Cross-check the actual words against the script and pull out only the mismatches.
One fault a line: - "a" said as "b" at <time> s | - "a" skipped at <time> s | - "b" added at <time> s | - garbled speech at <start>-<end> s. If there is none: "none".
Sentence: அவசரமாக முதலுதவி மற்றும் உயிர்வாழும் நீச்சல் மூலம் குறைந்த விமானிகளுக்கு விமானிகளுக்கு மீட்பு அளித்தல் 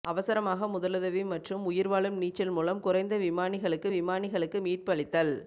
none